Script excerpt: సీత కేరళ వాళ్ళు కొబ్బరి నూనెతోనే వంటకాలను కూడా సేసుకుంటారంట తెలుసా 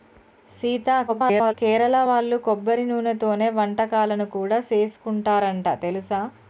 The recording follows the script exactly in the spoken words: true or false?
false